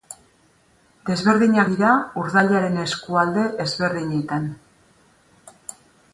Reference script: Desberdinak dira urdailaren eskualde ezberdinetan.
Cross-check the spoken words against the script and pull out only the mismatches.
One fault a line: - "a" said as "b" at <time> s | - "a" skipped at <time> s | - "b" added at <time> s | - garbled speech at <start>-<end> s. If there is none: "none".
none